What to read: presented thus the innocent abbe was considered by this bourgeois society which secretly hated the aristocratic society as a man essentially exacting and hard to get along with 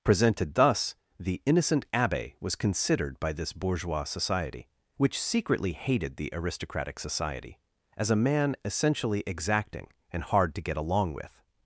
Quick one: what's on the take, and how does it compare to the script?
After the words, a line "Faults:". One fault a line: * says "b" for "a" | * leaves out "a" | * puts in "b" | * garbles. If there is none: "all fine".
presented thus the innocent abbe was considered by this bourgeois society which secretly hated the aristocratic society as a man essentially exacting and hard to get along with
Faults:
all fine